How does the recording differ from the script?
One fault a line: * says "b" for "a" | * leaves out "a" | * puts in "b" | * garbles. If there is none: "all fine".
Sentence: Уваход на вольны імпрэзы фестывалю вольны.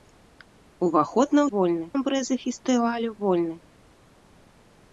all fine